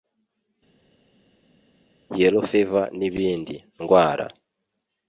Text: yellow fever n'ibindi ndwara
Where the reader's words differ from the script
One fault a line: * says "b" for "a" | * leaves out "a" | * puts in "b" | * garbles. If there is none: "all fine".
all fine